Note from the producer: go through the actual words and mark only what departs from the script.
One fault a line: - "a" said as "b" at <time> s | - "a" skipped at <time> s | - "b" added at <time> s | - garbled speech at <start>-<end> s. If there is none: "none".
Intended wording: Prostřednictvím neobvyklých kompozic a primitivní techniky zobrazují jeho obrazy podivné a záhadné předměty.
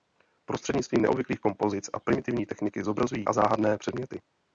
- "jeho obrazy podivné" skipped at 3.3 s